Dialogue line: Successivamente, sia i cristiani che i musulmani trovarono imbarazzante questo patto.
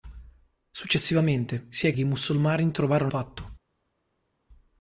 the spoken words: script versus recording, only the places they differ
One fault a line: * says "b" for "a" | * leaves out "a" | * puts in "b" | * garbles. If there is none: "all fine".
* leaves out "cristiani"
* leaves out "imbarazzante questo"